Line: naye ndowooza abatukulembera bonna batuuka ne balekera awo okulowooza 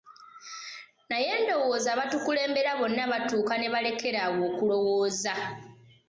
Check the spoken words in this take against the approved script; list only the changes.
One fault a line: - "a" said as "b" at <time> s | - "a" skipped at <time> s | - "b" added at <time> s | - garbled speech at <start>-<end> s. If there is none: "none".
none